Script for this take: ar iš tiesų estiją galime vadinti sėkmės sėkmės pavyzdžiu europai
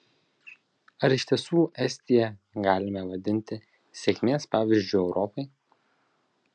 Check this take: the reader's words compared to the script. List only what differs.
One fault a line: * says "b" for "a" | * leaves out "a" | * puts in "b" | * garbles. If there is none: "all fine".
* leaves out "sėkmės"